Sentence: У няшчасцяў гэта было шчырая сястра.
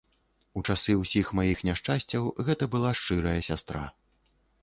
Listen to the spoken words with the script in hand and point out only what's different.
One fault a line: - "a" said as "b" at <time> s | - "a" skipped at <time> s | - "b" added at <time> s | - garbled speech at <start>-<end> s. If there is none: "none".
- "часы ўсіх маіх" added at 0.7 s
- "было" said as "была" at 2.8 s